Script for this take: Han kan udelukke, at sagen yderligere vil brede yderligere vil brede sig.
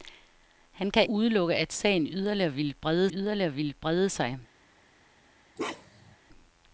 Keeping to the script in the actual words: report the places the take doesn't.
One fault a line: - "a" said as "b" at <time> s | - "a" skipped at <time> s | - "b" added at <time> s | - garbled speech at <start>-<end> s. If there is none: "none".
none